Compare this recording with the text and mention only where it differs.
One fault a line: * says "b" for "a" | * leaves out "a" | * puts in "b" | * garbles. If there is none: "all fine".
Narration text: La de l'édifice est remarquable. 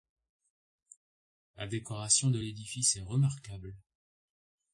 * puts in "décoration"